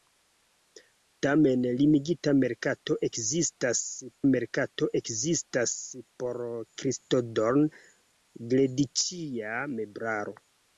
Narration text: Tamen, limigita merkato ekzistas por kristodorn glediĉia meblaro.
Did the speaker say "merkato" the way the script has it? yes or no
yes